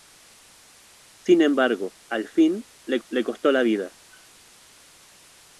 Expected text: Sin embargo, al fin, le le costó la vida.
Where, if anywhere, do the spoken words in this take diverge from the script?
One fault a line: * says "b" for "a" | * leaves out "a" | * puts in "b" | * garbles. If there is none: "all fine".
all fine